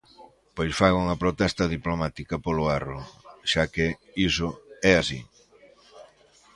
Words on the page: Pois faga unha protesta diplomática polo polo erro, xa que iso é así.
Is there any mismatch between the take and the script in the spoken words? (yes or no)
yes